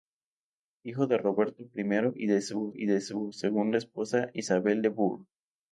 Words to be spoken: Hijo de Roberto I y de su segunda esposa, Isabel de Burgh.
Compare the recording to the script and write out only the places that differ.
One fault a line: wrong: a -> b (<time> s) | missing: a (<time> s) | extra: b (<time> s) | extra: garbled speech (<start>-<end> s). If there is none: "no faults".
extra: y de su (2.7 s)